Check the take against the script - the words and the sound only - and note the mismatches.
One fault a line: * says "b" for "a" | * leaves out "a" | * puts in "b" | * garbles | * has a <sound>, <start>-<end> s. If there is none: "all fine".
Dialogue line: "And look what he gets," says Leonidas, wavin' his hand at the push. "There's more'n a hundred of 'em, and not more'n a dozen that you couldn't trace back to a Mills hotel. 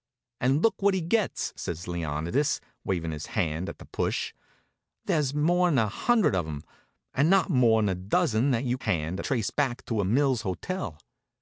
* says "hand" for "couldn't"